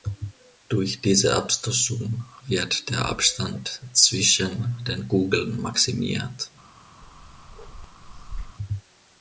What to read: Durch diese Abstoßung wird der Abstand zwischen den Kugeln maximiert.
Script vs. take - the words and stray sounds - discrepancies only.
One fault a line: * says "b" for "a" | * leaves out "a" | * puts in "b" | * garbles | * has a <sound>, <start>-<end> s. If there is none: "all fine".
* has a bark, 7.0-8.6 s